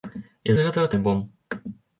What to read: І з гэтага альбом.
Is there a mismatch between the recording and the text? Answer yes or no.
no